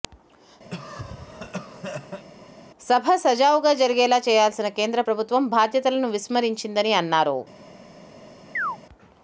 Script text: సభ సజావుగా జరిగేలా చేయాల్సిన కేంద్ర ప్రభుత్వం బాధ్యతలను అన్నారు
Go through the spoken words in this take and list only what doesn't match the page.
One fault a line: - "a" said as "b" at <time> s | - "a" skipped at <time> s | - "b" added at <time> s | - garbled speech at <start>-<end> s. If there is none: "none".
- "విస్మరించిందని" added at 6.1 s